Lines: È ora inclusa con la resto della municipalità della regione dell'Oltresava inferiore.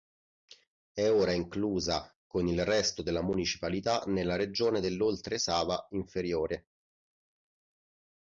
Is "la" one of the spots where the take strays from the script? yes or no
yes